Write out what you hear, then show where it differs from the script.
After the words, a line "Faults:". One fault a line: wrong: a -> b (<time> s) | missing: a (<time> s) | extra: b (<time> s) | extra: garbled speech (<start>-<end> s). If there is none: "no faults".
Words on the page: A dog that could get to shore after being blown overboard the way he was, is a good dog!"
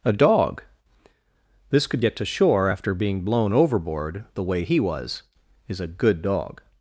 A dog this could get to shore after being blown overboard the way he was, is a good dog!"
Faults:
wrong: that -> this (1.7 s)